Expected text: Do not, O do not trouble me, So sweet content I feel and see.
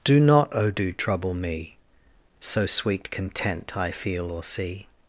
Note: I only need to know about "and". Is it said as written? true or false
false